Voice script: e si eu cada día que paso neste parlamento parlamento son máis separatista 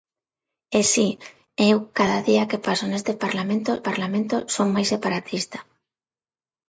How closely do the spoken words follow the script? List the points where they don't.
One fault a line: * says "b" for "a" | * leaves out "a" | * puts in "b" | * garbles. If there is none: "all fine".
all fine